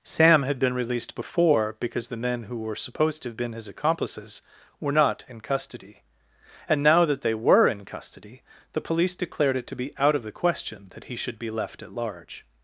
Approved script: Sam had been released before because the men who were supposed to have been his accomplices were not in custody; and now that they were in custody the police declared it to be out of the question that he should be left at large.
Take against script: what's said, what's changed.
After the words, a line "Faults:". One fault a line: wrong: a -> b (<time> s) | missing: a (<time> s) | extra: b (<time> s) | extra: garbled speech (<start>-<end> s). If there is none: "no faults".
Sam had been released before because the men who were supposed to have been his accomplices were not in custody; and now that they were in custody the police declared it to be out of the question that he should be left at large.
Faults:
no faults